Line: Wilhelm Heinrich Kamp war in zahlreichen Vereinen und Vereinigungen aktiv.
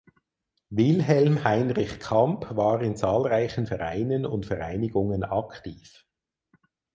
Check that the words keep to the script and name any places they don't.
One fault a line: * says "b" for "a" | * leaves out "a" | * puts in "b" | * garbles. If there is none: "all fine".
all fine